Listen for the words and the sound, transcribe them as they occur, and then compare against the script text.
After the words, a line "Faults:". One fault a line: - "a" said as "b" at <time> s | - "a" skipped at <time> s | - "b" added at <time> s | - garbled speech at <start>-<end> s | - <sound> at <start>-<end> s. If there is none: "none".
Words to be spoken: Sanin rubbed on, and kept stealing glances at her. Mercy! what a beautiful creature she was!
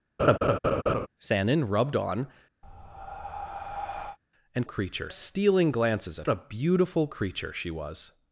Sanin rubbed on, and creature stealing glances at a beautiful creature she was!
Faults:
- laugh at 0.2-1.1 s
- breath at 2.6-4.2 s
- "kept" said as "creature" at 4.6 s
- "her Mercy what" skipped at 6.3 s